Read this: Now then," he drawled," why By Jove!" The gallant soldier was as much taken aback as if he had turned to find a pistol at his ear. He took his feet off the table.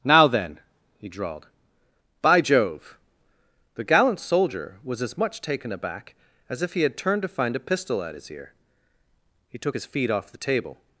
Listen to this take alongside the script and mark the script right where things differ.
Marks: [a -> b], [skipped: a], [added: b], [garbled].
Now then," he drawled," [skipped: why] By Jove!" The gallant soldier was as much taken aback as if he had turned to find a pistol at his ear. He took his feet off the table.